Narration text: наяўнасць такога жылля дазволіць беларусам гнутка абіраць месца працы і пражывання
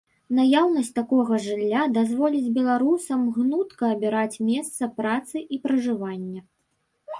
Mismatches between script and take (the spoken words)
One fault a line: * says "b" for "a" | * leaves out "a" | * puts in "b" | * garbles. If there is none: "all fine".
all fine